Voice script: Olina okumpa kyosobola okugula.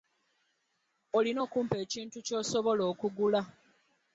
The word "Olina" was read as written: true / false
true